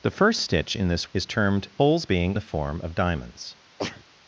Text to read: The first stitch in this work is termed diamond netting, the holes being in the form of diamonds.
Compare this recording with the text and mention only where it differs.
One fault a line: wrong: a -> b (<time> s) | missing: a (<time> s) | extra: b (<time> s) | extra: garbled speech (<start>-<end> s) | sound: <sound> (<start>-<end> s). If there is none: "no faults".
missing: work (1.1 s)
missing: diamond netting the (1.7 s)
missing: in (2.4 s)
sound: sneeze (3.8-4.1 s)